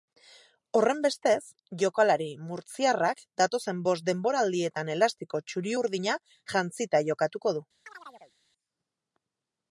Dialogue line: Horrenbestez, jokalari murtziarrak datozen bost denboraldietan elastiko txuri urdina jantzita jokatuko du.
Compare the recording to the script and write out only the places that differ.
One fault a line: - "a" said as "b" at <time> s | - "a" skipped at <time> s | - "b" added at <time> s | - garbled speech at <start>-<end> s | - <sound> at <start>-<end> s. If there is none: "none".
- chirp at 7.9-8.3 s